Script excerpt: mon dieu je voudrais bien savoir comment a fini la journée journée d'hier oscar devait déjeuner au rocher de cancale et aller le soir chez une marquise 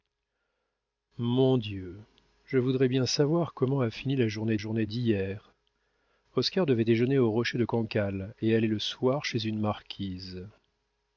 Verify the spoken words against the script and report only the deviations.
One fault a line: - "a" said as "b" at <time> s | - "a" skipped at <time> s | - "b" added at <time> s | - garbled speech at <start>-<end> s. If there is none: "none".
none